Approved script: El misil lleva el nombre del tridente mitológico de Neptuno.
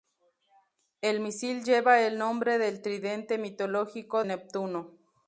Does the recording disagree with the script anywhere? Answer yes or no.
yes